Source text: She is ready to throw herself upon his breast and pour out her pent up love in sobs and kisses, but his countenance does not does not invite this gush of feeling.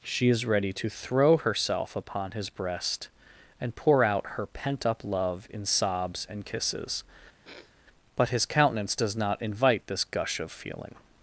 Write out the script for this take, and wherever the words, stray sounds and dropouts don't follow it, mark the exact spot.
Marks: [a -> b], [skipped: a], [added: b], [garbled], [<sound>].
She is ready to throw herself upon his breast and pour out her pent up love in sobs and kisses, [sniff] but his countenance does not [skipped: does not] invite this gush of feeling.